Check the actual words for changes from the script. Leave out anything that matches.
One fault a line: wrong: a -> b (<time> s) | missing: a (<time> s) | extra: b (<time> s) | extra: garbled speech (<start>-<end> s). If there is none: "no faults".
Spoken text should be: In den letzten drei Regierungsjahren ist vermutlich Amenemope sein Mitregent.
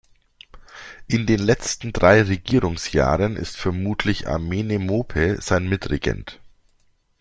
no faults